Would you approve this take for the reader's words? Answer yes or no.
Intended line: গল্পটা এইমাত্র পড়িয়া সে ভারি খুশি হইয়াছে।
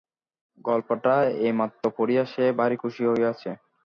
yes